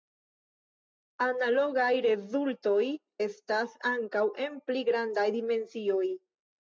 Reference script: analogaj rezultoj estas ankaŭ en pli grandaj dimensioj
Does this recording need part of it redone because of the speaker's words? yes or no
no